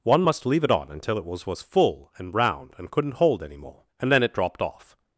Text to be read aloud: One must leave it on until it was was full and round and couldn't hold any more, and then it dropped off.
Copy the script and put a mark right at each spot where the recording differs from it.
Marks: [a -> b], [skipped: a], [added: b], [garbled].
One must leave it on until it was was full and round and couldn't hold any more, and then it dropped off.